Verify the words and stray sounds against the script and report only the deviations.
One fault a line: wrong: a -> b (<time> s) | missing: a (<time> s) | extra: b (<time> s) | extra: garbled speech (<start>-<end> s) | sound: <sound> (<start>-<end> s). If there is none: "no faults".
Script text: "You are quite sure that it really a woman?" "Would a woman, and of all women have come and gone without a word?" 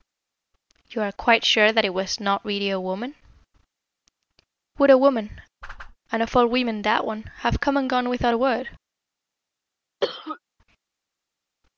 extra: was not (1.9 s)
sound: whoosh (5.6-6.0 s)
extra: that one (6.8 s)
sound: cough (10.0-10.4 s)